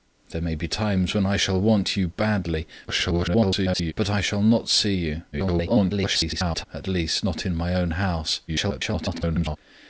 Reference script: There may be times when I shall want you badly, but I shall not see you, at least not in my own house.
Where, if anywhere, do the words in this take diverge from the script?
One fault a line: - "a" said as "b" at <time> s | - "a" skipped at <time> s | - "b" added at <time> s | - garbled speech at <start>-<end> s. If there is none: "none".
- garbled speech at 2.9-3.9 s
- garbled speech at 5.3-6.6 s
- garbled speech at 8.5-9.6 s